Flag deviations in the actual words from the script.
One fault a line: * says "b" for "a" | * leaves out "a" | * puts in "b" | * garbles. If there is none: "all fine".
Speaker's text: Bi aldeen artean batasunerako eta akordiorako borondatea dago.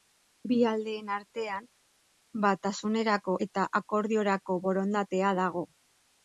all fine